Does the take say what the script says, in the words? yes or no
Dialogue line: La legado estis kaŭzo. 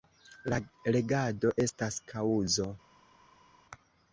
no